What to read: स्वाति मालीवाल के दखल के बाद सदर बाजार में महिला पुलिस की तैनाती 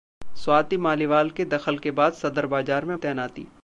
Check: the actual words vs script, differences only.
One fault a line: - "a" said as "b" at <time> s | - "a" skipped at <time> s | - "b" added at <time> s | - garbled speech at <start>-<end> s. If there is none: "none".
- "महिला पुलिस की" skipped at 3.0 s